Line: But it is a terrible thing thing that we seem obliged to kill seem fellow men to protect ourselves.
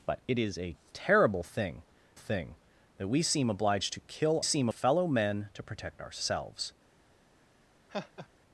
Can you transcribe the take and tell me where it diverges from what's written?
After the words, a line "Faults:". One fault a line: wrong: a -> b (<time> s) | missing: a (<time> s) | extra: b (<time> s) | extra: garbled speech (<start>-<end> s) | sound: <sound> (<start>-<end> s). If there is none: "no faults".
But it is a terrible thing thing that we seem obliged to kill seem fellow men to protect ourselves.
Faults:
sound: laugh (7.9-8.3 s)